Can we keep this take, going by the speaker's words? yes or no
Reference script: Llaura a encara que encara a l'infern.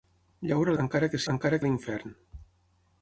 yes